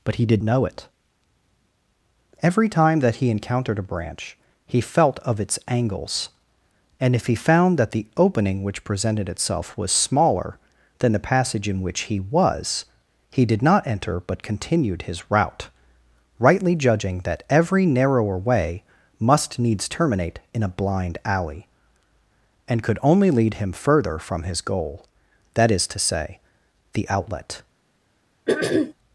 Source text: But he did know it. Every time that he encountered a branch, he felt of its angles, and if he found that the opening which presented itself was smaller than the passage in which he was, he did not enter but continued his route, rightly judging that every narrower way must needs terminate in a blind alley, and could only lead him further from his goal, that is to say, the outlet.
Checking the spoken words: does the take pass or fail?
pass